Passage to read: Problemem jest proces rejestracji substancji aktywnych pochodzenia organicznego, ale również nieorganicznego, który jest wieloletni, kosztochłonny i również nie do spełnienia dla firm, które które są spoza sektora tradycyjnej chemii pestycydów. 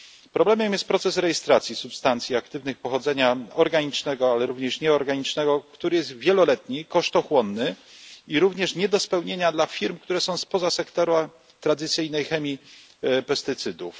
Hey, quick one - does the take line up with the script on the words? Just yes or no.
no